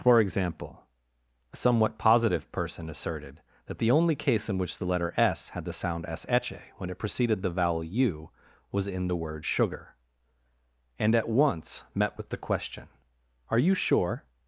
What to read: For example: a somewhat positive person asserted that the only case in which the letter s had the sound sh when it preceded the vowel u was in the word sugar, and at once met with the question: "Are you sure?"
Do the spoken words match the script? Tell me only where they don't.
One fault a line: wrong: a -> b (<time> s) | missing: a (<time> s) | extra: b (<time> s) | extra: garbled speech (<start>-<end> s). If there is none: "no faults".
no faults